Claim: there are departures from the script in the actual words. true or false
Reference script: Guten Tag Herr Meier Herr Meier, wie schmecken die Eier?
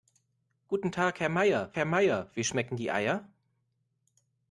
false